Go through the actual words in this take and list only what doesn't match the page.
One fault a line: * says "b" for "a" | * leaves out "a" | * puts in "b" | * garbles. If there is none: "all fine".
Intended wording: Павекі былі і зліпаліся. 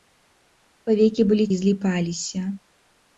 all fine